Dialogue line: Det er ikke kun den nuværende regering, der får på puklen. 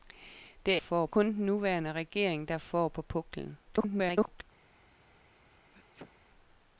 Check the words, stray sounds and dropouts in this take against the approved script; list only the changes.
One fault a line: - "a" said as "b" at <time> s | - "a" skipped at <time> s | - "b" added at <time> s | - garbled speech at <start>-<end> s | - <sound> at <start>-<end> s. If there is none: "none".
- "ikke" said as "får" at 0.8 s
- garbled speech at 3.6-4.4 s
- sneeze at 5.7-6.1 s